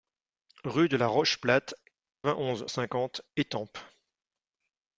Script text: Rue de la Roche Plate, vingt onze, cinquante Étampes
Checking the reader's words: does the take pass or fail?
pass